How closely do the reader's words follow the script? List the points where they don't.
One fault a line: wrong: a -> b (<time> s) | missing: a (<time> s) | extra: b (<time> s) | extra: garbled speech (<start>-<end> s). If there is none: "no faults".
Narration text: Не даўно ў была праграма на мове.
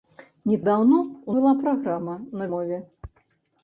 no faults